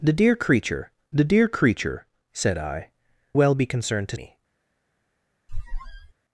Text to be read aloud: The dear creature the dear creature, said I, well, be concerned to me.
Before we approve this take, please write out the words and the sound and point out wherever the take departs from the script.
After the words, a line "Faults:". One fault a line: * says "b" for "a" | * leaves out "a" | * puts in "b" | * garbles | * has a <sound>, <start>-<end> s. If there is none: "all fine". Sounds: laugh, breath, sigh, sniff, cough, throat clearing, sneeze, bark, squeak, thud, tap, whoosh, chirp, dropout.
The dear creature the dear creature, said I, well, be concerned to me.
Faults:
* has a squeak, 5.5-6.1 s